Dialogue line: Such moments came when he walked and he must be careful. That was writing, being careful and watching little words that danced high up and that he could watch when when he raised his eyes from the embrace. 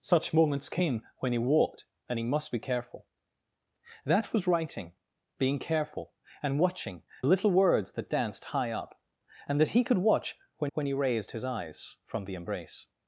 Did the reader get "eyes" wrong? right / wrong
right